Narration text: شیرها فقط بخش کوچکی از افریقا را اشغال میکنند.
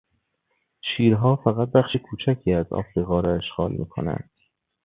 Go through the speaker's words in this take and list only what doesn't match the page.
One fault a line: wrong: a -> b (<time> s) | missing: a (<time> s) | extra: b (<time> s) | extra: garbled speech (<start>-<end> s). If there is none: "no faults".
no faults